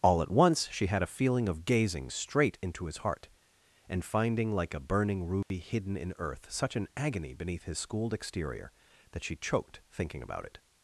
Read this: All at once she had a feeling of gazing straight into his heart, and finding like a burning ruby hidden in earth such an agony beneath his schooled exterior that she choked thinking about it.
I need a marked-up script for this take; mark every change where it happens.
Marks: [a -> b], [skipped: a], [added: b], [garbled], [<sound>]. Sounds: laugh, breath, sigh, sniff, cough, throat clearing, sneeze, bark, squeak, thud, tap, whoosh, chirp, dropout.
All at once she had a feeling of gazing straight into his heart, and finding like a burning ruby [dropout] hidden in earth such an agony beneath his schooled exterior that she choked thinking about it.